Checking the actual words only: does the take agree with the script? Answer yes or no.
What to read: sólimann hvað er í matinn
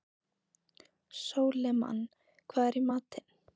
yes